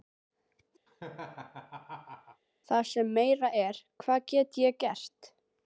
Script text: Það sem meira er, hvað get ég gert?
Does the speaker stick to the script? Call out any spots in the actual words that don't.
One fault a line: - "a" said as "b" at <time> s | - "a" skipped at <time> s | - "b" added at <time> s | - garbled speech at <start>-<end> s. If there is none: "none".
none